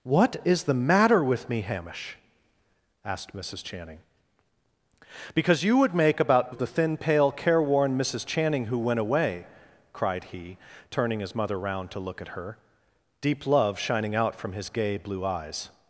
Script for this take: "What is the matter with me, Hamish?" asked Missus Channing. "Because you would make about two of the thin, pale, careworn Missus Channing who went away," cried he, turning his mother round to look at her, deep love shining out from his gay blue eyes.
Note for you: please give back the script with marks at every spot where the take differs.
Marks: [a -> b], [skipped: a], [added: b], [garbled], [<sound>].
"What is the matter with me, Hamish?" asked Missus Channing. "Because you would make about [skipped: two] of the thin, pale, careworn Missus Channing who went away," cried he, turning his mother round to look at her, deep love shining out from his gay blue eyes.